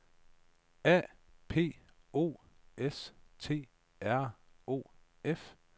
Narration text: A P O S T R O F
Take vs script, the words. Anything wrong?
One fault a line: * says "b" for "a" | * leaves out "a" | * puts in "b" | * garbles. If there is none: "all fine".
all fine